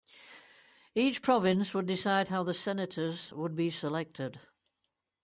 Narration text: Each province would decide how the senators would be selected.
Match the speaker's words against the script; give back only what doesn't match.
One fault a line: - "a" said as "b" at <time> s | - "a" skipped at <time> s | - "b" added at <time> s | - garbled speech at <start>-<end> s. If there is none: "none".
none